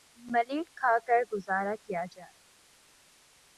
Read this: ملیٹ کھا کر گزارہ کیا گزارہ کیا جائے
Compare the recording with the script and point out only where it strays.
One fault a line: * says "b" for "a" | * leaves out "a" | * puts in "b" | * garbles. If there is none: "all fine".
* leaves out "گزارہ کیا"